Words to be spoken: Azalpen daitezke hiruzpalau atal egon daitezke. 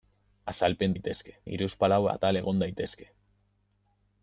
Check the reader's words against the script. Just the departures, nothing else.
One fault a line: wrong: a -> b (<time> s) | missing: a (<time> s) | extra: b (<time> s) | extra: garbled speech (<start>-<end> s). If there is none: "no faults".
no faults